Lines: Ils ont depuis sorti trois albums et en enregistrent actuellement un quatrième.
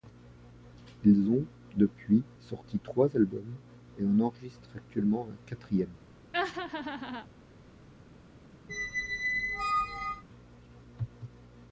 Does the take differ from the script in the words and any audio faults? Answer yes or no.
yes